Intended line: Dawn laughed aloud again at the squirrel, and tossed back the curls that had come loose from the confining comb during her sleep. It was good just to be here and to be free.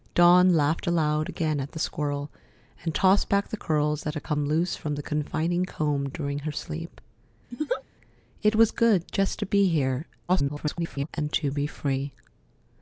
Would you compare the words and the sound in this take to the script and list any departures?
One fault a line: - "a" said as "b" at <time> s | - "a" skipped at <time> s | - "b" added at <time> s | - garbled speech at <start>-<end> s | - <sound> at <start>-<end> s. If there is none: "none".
- laugh at 7.5-7.8 s
- garbled speech at 10.3-11.1 s